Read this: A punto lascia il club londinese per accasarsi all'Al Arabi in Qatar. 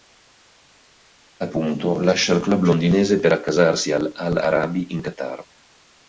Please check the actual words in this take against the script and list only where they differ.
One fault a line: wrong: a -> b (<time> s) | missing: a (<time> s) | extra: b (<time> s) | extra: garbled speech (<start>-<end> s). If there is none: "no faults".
no faults